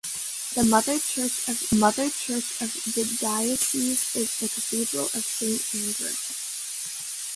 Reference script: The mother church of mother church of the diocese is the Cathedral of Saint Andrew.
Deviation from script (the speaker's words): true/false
false